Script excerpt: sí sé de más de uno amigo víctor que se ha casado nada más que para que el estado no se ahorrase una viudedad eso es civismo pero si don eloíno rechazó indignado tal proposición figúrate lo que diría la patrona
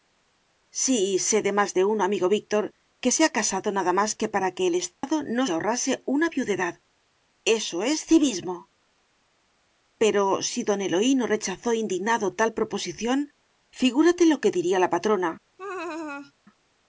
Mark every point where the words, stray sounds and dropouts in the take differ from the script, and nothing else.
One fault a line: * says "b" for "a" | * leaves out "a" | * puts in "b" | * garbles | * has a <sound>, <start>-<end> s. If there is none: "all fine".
* has a dropout, 4.9-5.0 s
* leaves out "se"
* has a laugh, 15.6-16.3 s